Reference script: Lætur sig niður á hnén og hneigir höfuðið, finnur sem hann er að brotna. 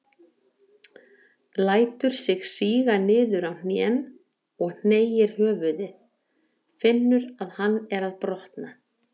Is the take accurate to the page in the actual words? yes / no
no